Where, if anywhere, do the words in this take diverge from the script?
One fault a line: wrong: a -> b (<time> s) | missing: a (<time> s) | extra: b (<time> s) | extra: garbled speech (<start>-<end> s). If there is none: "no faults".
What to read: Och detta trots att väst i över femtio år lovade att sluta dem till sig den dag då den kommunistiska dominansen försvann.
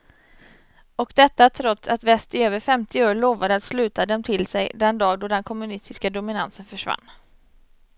no faults